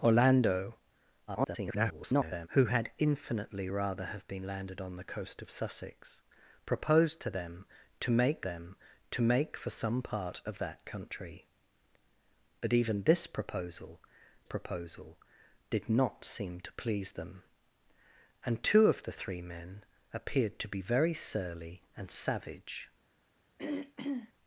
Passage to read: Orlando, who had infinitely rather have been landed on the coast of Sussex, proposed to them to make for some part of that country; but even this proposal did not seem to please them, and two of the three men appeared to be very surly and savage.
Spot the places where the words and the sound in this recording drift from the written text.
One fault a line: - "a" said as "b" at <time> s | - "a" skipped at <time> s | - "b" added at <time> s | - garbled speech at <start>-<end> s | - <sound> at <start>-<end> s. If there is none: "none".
- garbled speech at 1.3-2.5 s
- "them to make" added at 8.4 s
- "proposal" added at 14.4 s
- throat clearing at 23.6-24.3 s